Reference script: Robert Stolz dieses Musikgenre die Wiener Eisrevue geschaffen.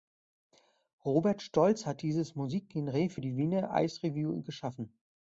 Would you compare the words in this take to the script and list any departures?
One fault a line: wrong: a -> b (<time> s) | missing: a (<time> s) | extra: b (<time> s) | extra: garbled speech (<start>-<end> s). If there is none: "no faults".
extra: hat (1.9 s)
extra: für (3.1 s)